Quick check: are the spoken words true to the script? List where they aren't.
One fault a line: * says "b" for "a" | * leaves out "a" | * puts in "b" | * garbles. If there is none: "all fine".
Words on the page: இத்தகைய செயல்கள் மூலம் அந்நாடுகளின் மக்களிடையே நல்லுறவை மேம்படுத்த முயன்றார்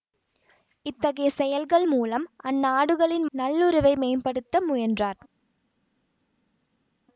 * leaves out "மக்களிடையே"